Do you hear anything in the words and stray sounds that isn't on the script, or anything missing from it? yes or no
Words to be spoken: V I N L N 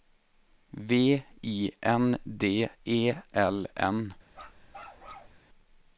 yes